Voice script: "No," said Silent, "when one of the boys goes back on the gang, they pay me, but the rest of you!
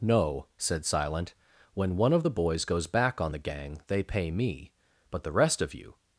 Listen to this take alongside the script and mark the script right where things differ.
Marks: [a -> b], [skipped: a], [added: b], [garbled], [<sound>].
"No," said Silent, "when one of the boys goes back on the gang, they pay me, but the rest of you!